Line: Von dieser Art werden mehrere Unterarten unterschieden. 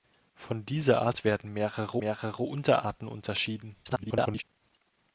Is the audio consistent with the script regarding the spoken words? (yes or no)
no